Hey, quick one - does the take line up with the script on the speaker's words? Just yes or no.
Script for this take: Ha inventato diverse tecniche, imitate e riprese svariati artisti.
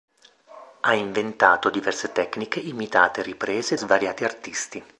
yes